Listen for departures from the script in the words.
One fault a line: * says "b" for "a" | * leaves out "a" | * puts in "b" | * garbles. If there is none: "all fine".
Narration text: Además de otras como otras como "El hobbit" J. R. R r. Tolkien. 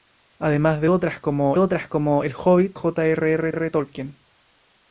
all fine